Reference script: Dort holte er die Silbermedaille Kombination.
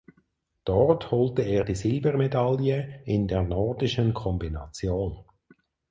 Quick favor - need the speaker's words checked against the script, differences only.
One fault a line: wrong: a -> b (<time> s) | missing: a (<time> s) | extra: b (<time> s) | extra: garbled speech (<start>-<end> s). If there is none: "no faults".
extra: in der Nordischen (3.0 s)